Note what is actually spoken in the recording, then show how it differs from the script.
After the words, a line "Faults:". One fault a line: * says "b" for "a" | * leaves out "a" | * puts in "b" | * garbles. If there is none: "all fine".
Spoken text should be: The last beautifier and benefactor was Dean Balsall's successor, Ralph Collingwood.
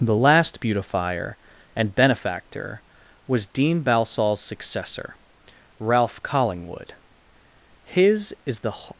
The last beautifier and benefactor was Dean Balsall's successor, Ralph Collingwood. His is the
Faults:
* puts in "His is the"